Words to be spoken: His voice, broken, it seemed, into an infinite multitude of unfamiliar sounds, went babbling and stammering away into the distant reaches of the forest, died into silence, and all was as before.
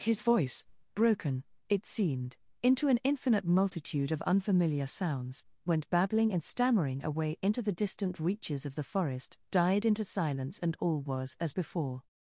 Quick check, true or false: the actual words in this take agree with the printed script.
true